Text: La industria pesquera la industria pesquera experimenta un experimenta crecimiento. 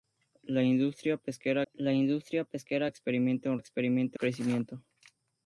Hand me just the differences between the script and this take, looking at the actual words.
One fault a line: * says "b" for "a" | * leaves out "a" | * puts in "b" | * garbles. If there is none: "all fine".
all fine